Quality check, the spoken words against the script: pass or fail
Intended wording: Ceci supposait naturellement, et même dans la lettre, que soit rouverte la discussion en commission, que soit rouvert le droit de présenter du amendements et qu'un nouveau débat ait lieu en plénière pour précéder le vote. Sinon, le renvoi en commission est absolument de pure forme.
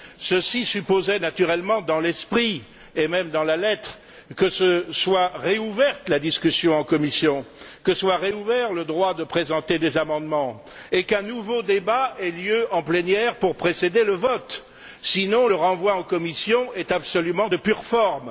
fail